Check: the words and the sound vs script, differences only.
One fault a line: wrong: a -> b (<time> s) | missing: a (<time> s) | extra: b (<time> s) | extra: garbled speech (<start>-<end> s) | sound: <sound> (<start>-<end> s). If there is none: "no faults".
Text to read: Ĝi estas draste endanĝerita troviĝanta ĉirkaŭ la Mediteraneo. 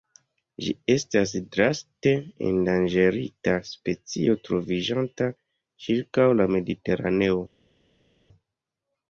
extra: specio (3.7 s)